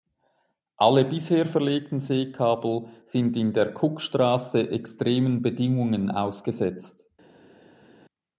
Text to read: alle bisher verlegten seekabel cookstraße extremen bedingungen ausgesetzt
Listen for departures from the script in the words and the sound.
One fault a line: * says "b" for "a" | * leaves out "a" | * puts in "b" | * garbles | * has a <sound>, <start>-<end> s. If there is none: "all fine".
* puts in "sind in der"